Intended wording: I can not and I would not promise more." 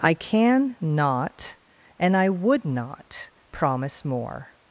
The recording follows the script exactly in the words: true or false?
true